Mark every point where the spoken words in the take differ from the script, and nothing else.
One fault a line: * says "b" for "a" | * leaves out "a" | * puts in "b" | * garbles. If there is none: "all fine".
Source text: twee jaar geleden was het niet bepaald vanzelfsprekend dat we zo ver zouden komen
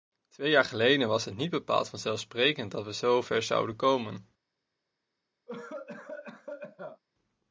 all fine